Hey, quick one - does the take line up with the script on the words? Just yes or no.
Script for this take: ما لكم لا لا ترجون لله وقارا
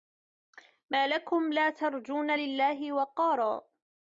no